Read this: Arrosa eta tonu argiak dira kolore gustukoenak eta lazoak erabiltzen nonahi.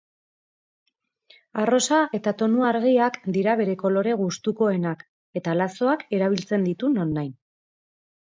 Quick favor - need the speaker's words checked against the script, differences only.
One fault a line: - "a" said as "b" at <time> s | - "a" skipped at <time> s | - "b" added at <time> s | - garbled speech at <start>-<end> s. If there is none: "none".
- "bere" added at 3.6 s
- "ditu" added at 6.7 s